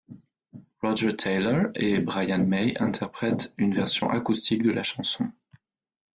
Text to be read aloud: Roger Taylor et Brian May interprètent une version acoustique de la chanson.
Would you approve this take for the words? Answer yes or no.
yes